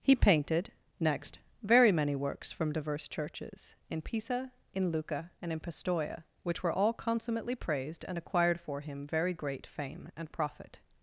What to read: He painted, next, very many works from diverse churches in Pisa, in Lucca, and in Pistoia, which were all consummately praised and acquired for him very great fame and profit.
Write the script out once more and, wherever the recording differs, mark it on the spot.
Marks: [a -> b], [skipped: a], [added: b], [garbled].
He painted, next, very many works from diverse churches in Pisa, in Lucca, and in Pistoia, which were all consummately praised and acquired for him very great fame and profit.